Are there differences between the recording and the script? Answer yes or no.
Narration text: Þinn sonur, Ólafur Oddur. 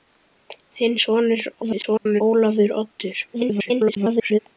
yes